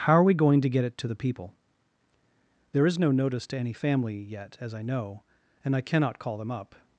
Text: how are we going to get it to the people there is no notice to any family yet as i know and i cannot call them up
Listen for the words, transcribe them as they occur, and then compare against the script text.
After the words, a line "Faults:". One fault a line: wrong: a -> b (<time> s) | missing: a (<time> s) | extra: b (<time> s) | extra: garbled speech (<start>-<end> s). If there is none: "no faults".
how are we going to get it to the people there is no notice to any family yet as i know and i cannot call them up
Faults:
no faults